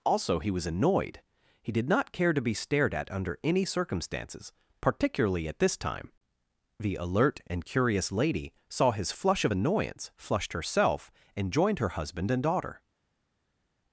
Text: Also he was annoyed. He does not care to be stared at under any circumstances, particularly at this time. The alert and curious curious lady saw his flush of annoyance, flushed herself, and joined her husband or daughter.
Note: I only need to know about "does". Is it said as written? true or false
false